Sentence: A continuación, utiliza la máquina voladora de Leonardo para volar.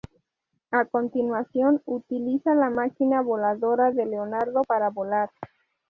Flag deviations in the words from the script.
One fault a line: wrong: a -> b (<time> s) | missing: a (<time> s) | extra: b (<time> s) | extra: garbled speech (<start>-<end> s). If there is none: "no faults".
no faults